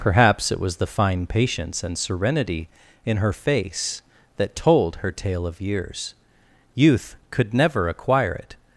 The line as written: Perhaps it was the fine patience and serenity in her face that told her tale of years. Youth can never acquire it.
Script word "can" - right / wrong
wrong